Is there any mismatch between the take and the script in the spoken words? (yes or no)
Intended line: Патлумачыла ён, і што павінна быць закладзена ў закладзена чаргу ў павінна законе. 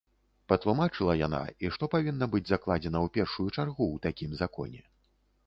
yes